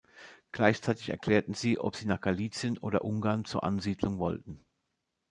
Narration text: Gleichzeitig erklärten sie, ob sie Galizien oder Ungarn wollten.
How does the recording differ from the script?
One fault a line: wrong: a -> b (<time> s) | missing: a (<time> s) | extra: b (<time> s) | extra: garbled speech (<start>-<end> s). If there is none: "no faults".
extra: nach (2.1 s)
extra: zur Ansiedlung (3.4 s)